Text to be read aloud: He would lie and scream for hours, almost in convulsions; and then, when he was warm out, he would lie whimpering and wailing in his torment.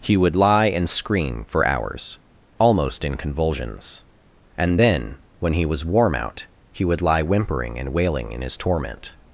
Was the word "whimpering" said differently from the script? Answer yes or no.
no